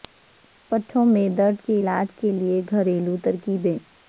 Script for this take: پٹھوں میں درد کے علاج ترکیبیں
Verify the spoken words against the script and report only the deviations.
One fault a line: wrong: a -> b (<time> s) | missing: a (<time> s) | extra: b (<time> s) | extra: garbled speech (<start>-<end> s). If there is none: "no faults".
extra: کے لیے گھریلو (2.2 s)